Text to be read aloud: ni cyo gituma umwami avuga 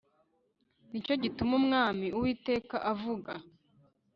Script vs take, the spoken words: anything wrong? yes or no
yes